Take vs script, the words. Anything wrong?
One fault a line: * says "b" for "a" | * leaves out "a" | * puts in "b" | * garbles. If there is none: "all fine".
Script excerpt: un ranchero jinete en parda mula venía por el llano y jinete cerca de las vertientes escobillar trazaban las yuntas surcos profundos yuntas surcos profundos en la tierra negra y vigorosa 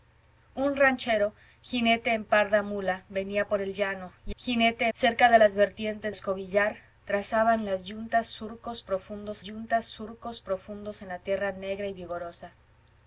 all fine